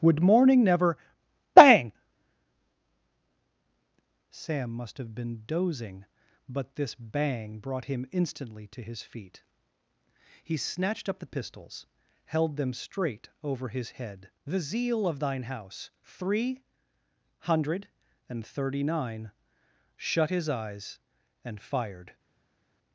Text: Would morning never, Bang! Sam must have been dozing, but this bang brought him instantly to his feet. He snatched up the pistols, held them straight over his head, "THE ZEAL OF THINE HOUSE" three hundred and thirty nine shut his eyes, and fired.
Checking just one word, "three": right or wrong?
right